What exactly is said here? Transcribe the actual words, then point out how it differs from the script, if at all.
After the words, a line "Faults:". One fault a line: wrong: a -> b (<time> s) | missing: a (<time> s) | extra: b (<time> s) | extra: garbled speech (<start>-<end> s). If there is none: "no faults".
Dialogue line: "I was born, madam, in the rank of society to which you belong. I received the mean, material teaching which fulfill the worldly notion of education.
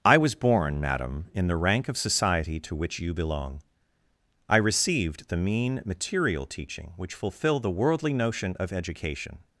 "I was born, madam, in the rank of society to which you belong. I received the mean, material teaching which fulfill the worldly notion of education.
Faults:
no faults